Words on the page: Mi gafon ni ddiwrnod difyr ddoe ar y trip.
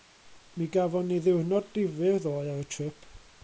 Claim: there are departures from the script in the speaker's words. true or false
false